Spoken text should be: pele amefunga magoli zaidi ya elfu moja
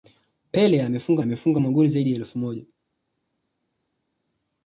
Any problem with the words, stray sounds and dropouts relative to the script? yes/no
yes